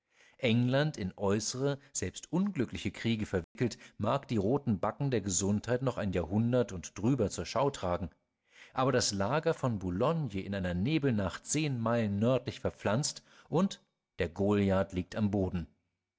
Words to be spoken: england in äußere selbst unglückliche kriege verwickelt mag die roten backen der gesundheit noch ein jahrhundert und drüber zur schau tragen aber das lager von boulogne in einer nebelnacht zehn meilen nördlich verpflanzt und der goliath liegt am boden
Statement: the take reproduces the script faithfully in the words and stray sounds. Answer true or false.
false